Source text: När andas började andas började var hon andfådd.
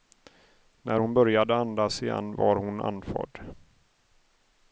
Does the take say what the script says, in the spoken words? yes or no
no